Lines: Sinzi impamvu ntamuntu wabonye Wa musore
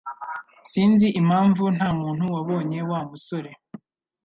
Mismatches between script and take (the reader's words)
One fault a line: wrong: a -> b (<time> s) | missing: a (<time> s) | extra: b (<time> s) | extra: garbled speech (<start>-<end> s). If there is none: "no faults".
no faults